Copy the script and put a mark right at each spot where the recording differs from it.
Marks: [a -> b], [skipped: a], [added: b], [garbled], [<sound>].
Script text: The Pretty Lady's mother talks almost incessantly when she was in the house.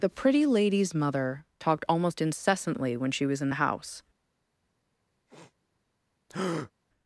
The Pretty Lady's mother [talks -> talked] almost incessantly when she was in the house. [sniff] [breath]